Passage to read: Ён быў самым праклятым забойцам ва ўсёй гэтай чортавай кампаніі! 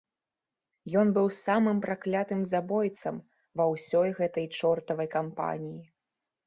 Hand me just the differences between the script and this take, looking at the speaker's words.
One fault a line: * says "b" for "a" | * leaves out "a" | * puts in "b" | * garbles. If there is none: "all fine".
all fine